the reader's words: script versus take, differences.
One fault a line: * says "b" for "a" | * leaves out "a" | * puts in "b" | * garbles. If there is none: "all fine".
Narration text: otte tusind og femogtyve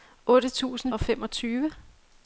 all fine